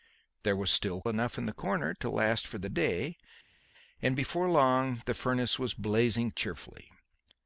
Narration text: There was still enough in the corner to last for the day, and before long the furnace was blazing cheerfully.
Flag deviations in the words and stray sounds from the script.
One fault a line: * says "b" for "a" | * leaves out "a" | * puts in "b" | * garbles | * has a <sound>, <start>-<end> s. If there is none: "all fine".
all fine